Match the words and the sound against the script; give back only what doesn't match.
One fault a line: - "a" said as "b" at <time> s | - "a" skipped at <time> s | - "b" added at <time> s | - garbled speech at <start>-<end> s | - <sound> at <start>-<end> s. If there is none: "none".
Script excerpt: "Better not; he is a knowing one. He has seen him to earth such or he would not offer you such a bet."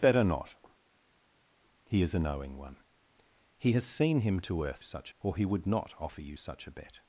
none